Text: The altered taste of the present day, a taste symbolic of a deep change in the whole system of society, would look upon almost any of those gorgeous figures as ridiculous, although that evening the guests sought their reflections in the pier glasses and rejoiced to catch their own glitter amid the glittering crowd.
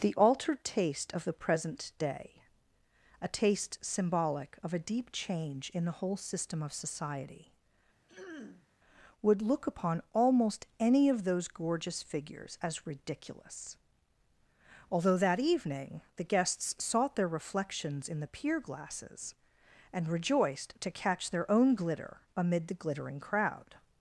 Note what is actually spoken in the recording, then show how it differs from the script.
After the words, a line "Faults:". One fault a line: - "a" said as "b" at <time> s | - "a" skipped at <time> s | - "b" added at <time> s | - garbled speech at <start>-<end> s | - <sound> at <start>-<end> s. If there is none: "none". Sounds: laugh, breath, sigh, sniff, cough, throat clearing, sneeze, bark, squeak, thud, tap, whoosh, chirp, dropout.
The altered taste of the present day, a taste symbolic of a deep change in the whole system of society, would look upon almost any of those gorgeous figures as ridiculous, although that evening the guests sought their reflections in the pier glasses and rejoiced to catch their own glitter amid the glittering crowd.
Faults:
- throat clearing at 8.1-8.7 s